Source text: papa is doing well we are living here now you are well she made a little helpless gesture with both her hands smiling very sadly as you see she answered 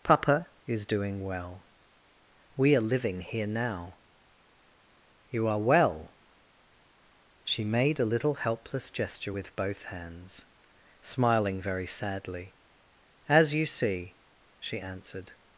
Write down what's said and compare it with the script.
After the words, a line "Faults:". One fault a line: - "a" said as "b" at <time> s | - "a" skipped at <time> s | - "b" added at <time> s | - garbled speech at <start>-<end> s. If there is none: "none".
papa is doing well we are living here now you are well she made a little helpless gesture with both hands smiling very sadly as you see she answered
Faults:
- "her" skipped at 9.8 s